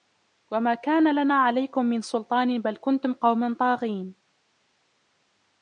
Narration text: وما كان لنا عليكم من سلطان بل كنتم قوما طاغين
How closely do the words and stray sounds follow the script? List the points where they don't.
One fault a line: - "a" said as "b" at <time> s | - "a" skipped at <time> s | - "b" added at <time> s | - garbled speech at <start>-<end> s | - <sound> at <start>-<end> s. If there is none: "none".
none